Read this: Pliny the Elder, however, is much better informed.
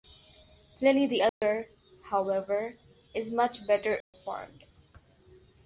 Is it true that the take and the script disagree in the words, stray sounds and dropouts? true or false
true